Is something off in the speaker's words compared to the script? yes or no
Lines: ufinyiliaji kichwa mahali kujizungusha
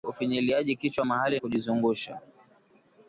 no